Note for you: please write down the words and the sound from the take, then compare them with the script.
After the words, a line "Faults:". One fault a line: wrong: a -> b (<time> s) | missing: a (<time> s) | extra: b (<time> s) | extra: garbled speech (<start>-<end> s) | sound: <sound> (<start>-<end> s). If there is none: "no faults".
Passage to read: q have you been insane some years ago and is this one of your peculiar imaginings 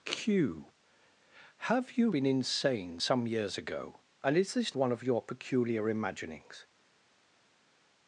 q have you been insane some years ago and is this one of your peculiar imaginings
Faults:
no faults